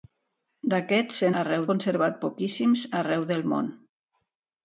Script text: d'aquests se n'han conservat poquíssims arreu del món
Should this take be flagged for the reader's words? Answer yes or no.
yes